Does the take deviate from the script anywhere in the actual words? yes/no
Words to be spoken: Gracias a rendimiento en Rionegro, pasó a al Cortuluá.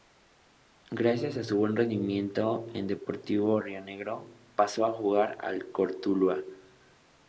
yes